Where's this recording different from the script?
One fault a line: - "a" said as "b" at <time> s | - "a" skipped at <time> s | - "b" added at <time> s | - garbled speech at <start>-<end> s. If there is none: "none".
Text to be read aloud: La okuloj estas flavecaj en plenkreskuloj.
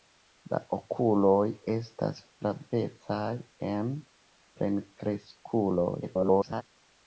- garbled speech at 6.0-6.6 s